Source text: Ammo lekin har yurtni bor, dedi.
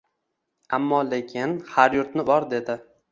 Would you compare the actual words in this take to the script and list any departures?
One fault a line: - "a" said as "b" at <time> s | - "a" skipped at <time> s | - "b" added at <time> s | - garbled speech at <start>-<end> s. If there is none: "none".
none